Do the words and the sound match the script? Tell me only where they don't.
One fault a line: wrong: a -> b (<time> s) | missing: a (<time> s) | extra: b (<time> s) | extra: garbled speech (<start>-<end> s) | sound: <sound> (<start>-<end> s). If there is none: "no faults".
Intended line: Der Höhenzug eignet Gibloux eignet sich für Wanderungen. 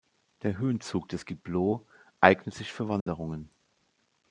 wrong: eignet -> des (1.1 s)
sound: dropout (3.0-3.1 s)